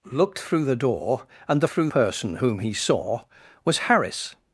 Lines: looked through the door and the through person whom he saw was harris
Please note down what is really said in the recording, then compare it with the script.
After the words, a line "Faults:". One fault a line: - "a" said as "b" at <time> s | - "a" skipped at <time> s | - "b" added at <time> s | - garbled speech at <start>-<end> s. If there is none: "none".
looked through the door and the through person whom he saw was harris
Faults:
none